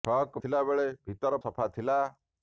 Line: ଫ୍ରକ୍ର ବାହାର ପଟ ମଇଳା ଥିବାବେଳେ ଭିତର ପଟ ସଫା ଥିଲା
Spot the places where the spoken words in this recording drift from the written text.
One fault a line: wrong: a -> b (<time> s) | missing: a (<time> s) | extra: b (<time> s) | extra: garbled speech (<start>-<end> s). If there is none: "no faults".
missing: ବାହାର ପଟ ମଇଳା (0.4 s)
missing: ପଟ (1.4 s)